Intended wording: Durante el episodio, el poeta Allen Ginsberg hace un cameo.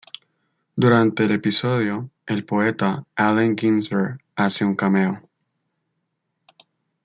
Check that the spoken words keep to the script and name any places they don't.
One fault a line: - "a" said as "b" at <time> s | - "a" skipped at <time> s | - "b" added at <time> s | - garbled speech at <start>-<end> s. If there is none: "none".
none